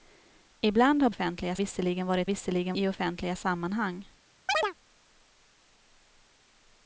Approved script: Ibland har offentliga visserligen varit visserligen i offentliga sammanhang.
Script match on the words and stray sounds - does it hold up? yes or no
no